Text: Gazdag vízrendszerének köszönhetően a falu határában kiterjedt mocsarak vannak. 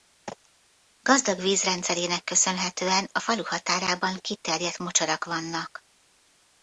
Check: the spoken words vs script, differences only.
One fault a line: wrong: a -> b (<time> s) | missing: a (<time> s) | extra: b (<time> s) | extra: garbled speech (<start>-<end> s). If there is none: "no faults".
no faults